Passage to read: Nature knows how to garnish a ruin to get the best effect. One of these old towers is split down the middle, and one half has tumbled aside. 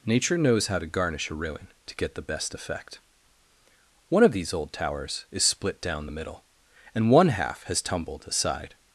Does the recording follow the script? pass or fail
pass